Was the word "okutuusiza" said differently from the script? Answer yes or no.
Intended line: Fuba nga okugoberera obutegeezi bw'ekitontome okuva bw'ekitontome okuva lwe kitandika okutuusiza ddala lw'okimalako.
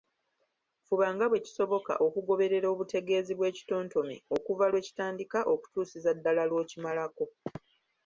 no